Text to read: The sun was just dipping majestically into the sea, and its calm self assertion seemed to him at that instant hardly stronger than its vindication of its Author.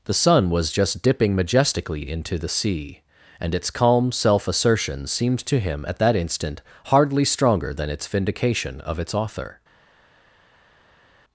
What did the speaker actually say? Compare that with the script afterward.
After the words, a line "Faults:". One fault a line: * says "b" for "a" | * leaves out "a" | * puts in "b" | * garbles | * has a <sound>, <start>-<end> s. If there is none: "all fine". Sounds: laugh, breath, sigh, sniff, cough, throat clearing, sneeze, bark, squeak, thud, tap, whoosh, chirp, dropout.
The sun was just dipping majestically into the sea, and its calm self assertion seemed to him at that instant hardly stronger than its vindication of its Author.
Faults:
all fine